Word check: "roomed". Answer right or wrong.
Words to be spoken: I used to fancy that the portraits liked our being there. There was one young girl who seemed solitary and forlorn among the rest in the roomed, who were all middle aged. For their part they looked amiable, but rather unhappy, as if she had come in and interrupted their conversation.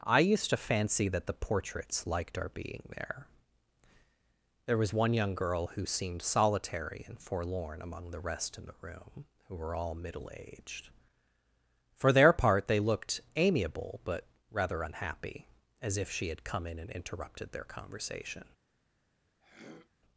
wrong